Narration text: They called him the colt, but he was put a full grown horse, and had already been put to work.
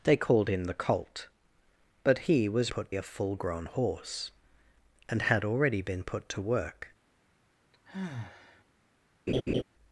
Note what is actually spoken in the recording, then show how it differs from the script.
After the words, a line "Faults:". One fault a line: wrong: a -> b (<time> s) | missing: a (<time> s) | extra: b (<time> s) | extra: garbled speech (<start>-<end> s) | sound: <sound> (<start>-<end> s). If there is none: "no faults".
They called him the colt, but he was put a full grown horse, and had already been put to work.
Faults:
sound: sigh (7.7-8.6 s)
sound: laugh (9.3-9.6 s)